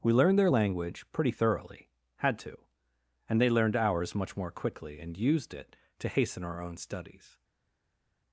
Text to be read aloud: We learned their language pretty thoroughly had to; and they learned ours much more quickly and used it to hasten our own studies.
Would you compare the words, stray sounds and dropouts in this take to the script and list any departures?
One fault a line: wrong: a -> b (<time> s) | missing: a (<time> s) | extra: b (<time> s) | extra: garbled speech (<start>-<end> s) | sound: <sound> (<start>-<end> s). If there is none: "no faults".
no faults